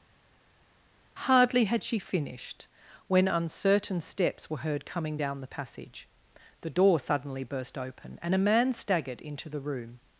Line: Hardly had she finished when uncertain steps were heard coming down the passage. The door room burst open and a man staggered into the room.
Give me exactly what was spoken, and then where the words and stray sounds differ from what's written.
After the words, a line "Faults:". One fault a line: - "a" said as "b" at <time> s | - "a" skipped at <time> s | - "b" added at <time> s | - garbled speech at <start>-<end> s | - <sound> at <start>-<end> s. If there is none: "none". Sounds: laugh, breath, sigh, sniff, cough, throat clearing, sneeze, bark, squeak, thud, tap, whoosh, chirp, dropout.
Hardly had she finished when uncertain steps were heard coming down the passage. The door suddenly burst open and a man staggered into the room.
Faults:
- "room" said as "suddenly" at 7.0 s